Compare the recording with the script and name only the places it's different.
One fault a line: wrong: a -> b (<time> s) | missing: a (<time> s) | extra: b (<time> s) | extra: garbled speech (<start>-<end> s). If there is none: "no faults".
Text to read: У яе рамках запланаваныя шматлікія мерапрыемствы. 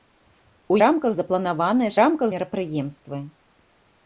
missing: яе (0.8 s)
wrong: шматлікія -> рамках (2.0 s)